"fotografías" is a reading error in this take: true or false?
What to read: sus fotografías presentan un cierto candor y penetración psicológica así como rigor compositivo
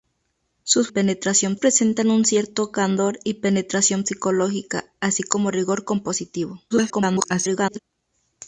true